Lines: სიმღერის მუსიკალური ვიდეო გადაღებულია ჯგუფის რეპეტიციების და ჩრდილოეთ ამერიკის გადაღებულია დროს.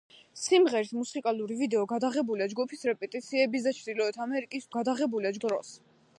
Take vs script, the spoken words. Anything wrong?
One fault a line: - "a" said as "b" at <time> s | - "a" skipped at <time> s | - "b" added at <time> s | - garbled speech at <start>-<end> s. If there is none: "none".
none